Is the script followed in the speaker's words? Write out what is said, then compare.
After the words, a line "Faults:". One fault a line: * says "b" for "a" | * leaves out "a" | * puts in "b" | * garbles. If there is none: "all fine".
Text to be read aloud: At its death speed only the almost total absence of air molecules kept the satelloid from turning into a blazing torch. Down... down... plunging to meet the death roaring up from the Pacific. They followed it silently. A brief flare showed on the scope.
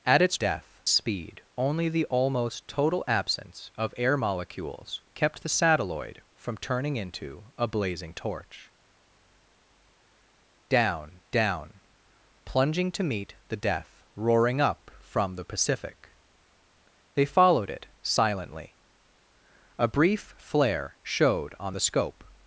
At its death speed only the almost total absence of air molecules kept the satelloid from turning into a blazing torch. Down... down... plunging to meet the death roaring up from the Pacific. They followed it silently. A brief flare showed on the scope.
Faults:
all fine